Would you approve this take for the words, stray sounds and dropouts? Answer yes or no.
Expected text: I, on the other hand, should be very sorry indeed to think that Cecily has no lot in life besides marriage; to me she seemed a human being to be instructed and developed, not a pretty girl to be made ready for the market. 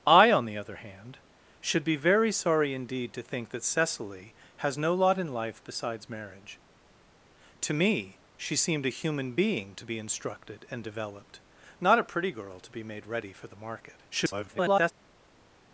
no